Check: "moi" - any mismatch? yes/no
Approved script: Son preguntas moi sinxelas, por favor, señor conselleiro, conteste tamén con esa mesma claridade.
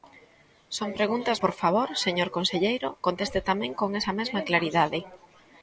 yes